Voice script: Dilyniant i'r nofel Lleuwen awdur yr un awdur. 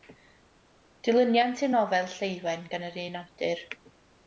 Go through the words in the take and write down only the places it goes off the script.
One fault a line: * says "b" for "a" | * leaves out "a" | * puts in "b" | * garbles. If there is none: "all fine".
* says "gan" for "awdur"